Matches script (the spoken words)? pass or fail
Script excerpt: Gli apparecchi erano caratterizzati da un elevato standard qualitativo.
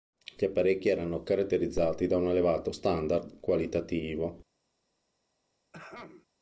pass